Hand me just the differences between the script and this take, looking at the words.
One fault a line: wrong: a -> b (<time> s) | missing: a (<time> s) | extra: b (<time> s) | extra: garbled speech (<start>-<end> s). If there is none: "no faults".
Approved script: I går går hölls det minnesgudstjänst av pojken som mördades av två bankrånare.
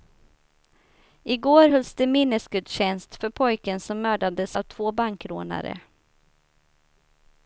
missing: går (1.7 s)
wrong: av -> för (3.2 s)